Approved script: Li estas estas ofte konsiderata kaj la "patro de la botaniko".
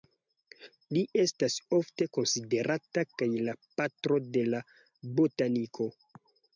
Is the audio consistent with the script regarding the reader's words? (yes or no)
no